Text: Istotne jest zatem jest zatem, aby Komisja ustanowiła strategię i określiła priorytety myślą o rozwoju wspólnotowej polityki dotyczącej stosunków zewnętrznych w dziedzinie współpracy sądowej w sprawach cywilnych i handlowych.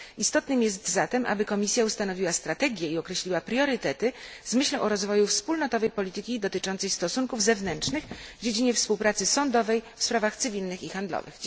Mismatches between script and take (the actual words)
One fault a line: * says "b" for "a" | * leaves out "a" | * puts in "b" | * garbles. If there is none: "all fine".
* leaves out "jest zatem"
* puts in "z"